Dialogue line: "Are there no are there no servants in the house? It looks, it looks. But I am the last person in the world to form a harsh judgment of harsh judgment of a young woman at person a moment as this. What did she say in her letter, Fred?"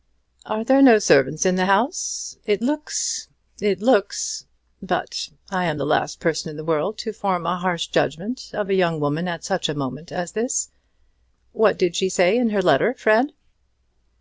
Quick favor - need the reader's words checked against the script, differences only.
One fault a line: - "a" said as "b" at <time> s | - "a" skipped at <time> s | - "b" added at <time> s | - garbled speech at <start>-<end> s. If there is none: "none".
- "are there no" skipped at 1.0 s
- "harsh judgment of" skipped at 8.7 s
- "person" said as "such" at 9.4 s